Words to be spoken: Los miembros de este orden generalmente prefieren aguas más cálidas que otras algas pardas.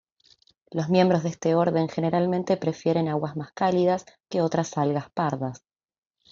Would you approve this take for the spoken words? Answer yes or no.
yes